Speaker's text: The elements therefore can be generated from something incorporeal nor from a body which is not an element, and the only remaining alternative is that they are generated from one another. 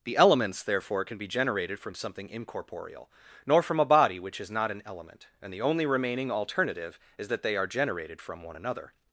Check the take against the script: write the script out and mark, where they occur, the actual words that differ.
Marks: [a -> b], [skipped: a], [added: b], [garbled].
The elements therefore can be generated from something incorporeal nor from a body which is not an element, and the only remaining alternative is that they are generated from one another.